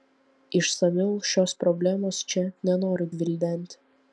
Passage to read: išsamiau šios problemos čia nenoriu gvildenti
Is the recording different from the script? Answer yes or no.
no